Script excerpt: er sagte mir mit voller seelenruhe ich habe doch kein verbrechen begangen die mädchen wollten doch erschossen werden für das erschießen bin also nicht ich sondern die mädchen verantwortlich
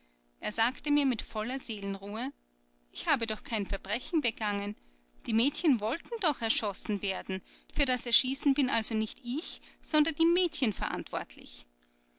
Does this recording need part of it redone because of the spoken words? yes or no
no